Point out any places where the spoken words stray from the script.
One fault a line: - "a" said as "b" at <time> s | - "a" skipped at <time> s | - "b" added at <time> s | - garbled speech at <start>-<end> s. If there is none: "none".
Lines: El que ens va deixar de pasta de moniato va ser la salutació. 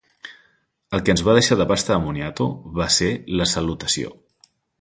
none